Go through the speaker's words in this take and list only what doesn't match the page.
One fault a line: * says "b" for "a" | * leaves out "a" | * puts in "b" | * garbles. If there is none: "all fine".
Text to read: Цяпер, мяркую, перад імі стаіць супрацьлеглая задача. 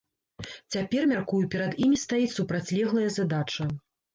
all fine